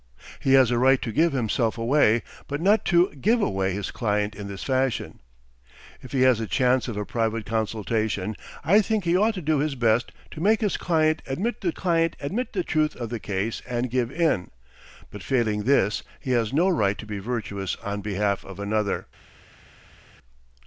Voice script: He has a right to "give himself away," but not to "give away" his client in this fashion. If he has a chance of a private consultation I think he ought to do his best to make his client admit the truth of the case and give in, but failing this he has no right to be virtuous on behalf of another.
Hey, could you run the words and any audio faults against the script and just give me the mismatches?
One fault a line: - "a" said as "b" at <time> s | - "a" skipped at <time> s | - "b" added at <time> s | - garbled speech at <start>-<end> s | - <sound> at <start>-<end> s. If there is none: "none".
- "client admit the" added at 11.7 s